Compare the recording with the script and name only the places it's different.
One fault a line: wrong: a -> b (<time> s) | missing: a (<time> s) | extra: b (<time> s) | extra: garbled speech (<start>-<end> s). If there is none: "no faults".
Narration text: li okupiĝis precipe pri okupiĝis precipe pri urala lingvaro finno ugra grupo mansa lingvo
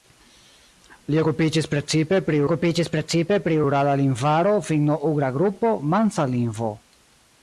no faults